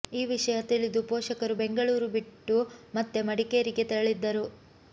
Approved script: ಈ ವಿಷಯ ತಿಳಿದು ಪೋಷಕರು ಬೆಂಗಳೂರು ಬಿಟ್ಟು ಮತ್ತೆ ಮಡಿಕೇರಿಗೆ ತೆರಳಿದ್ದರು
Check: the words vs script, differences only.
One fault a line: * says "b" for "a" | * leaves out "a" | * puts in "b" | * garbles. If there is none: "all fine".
all fine